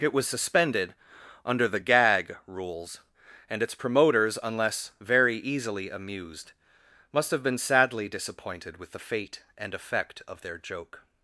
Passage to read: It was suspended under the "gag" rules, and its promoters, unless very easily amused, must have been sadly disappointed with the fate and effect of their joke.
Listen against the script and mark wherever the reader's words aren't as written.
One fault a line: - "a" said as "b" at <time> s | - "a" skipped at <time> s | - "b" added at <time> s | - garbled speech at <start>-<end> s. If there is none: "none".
none